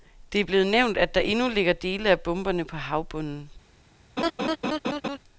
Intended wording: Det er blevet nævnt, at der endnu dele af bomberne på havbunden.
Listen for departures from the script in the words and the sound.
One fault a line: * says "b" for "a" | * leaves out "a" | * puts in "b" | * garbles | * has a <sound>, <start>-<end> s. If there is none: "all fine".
* puts in "ligger"
* has a laugh, 4.2-5.2 s